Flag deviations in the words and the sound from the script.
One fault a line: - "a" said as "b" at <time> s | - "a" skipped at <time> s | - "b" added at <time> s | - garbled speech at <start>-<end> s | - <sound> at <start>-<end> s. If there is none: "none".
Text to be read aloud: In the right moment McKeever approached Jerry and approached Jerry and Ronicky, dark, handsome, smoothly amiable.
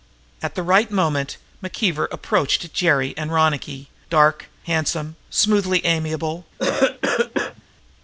- "In" said as "At" at 0.4 s
- "approached Jerry and" skipped at 3.3 s
- cough at 6.6-7.6 s